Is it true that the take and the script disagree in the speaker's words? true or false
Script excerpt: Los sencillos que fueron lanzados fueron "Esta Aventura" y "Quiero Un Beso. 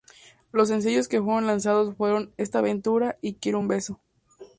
false